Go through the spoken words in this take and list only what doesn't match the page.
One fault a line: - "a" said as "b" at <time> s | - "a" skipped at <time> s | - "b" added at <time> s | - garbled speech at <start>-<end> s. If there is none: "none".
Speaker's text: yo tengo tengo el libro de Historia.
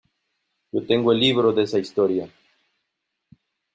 - "tengo" skipped at 1.1 s
- "esa" added at 1.6 s